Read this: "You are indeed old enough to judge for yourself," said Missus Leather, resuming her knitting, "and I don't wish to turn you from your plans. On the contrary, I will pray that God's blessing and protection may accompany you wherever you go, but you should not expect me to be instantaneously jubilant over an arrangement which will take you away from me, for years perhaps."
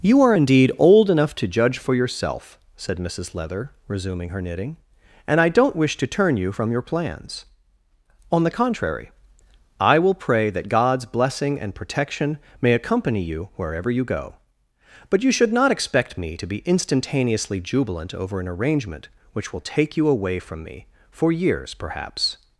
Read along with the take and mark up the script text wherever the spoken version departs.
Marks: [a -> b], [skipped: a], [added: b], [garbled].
"You are indeed old enough to judge for yourself," said Missus Leather, resuming her knitting, "and I don't wish to turn you from your plans. On the contrary, I will pray that God's blessing and protection may accompany you wherever you go, but you should not expect me to be instantaneously jubilant over an arrangement which will take you away from me, for years perhaps."